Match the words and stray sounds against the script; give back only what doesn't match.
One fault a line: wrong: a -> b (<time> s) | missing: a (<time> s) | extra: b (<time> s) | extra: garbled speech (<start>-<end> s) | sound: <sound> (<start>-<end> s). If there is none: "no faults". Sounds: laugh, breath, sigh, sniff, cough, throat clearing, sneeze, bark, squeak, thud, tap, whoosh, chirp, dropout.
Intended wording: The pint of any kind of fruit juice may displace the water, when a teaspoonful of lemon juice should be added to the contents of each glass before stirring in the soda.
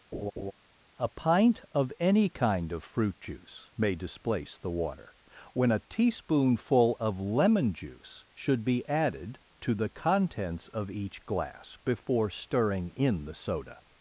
sound: laugh (0.1-0.5 s)
wrong: The -> A (1.0 s)